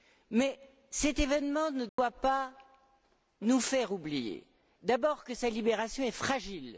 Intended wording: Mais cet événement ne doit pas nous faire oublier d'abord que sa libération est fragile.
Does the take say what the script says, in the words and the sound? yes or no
no